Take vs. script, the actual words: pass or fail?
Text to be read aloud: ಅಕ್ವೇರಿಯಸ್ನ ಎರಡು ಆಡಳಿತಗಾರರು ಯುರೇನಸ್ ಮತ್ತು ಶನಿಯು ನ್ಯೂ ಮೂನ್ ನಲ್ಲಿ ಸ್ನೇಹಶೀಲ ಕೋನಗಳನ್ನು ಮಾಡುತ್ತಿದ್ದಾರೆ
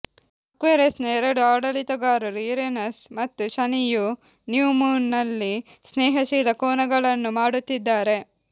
pass